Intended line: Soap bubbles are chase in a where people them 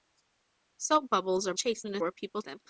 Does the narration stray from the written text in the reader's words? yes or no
no